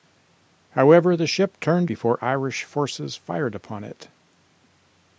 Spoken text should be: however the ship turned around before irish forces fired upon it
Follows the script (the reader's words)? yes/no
no